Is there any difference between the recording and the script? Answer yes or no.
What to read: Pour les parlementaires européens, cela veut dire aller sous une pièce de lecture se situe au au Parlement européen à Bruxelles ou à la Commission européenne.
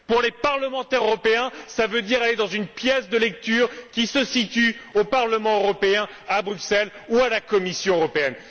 yes